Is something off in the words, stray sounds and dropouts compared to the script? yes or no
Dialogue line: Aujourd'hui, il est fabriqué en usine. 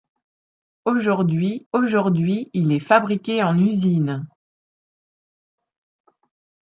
yes